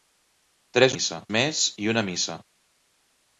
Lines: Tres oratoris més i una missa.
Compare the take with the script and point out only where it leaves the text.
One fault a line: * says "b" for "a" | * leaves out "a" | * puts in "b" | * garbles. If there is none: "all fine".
* says "missa" for "oratoris"